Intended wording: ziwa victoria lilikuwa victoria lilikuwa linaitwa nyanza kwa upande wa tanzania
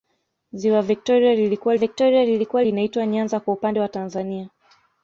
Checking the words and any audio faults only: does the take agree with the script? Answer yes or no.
yes